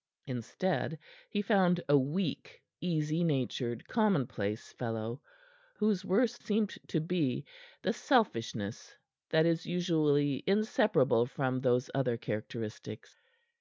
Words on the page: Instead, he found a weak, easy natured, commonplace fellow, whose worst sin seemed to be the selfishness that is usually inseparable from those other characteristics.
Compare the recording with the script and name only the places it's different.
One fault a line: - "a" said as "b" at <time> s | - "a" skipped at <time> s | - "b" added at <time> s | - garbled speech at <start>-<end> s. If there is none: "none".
- "sin" skipped at 6.4 s